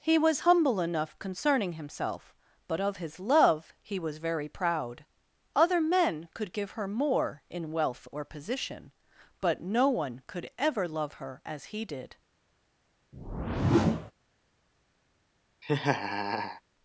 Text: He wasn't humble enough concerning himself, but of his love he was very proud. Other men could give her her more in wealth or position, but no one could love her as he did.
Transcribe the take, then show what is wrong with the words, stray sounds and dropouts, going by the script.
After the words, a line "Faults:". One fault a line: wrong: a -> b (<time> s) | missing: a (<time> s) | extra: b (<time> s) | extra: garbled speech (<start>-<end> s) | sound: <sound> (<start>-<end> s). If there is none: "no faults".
He was humble enough concerning himself, but of his love he was very proud. Other men could give her more in wealth or position, but no one could ever love her as he did.
Faults:
wrong: wasn't -> was (0.2 s)
missing: her (6.9 s)
extra: ever (10.6 s)
sound: whoosh (13.1-14.1 s)
sound: laugh (15.6-16.6 s)